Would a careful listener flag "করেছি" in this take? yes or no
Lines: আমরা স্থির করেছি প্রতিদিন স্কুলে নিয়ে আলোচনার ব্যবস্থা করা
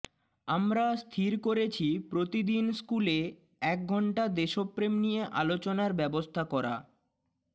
no